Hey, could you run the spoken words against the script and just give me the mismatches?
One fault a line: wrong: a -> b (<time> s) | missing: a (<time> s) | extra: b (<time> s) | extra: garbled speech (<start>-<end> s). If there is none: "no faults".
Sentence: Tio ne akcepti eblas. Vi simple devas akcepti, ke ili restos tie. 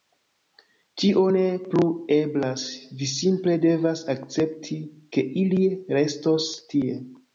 wrong: akcepti -> plu (1.7 s)